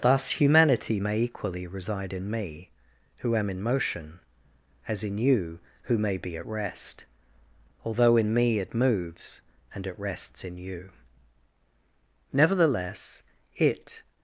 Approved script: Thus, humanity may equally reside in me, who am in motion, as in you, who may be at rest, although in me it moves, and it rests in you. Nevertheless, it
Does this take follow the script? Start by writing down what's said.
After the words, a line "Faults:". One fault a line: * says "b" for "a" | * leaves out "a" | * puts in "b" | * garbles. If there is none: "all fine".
Thus, humanity may equally reside in me, who am in motion, as in you, who may be at rest, although in me it moves, and it rests in you. Nevertheless, it
Faults:
all fine